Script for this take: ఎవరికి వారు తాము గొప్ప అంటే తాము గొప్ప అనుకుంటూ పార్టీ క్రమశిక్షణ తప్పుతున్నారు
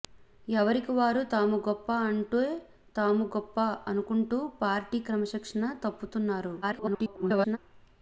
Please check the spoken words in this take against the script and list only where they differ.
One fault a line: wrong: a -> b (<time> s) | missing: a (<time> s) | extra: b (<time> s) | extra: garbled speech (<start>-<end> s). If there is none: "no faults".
extra: garbled speech (6.6-7.6 s)